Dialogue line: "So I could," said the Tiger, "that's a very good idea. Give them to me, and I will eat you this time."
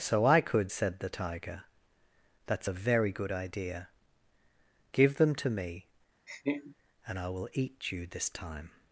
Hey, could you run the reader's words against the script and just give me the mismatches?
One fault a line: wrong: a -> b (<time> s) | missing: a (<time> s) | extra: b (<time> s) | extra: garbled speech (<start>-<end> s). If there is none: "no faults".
no faults